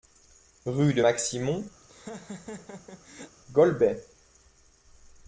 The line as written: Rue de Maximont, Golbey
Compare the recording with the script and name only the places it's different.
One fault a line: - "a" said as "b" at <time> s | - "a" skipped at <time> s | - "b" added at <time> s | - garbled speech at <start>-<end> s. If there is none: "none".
none